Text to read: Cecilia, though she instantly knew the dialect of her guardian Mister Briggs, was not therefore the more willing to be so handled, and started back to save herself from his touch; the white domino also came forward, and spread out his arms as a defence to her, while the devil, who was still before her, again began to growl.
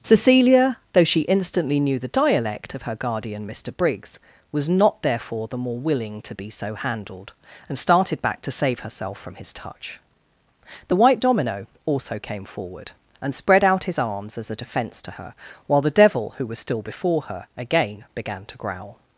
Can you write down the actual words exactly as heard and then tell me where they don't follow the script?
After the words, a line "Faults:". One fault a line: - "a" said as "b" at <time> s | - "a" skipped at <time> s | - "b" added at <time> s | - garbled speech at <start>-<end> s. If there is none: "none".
Cecilia, though she instantly knew the dialect of her guardian Mister Briggs, was not therefore the more willing to be so handled, and started back to save herself from his touch; the white domino also came forward, and spread out his arms as a defence to her, while the devil, who was still before her, again began to growl.
Faults:
none